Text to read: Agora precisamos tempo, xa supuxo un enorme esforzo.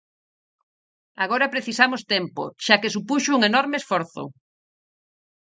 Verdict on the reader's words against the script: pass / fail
fail